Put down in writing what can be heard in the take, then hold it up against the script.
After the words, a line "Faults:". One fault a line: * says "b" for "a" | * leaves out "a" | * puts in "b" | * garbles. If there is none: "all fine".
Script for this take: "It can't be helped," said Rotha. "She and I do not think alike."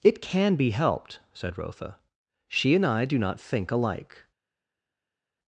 "It can be helped," said Rotha. "She and I do not think alike."
Faults:
* says "can" for "can't"